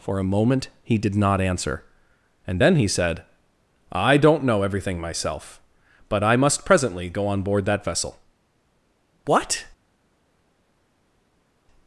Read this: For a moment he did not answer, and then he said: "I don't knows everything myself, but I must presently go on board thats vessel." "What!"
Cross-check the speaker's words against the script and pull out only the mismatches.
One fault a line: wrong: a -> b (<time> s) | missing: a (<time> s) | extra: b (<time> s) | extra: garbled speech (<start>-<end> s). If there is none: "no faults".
wrong: knows -> know (4.4 s)
wrong: thats -> that (7.6 s)